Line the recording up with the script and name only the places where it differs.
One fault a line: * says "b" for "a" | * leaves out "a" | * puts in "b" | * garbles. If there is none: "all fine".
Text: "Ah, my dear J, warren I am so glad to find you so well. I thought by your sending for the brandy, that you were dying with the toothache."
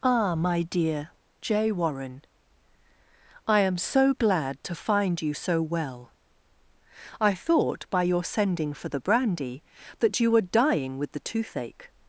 all fine